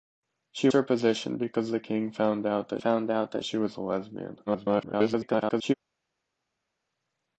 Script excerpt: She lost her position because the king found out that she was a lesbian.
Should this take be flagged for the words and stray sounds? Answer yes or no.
yes